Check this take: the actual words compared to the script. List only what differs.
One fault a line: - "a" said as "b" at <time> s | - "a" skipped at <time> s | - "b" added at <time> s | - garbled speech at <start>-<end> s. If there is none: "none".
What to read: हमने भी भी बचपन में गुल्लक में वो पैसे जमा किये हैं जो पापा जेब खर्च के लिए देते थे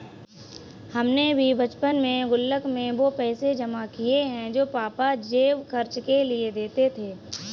- "भी" skipped at 1.5 s